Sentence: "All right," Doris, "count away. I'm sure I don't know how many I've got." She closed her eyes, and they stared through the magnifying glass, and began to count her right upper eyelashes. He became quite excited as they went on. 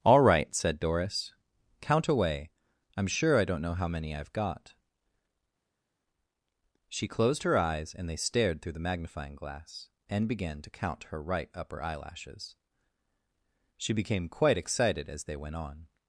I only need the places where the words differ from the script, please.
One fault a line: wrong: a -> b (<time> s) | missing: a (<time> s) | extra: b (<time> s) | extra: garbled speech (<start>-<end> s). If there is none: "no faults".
extra: said (0.6 s)
wrong: He -> She (13.8 s)